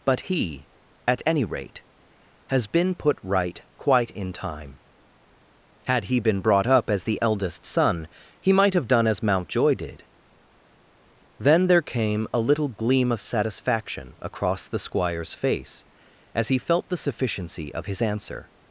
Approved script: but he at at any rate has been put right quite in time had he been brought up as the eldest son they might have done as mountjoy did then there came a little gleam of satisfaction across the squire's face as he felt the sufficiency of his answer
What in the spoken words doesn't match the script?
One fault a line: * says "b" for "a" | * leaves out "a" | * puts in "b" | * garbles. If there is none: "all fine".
* leaves out "at"
* says "he" for "they"